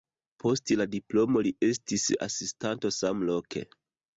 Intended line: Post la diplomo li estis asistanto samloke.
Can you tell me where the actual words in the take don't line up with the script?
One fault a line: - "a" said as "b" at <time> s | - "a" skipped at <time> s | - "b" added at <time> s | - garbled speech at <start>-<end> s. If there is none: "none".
none